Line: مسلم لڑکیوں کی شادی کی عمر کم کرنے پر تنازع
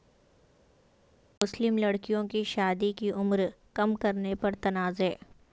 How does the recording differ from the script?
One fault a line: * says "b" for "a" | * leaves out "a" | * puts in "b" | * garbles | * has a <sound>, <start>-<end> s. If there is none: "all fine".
all fine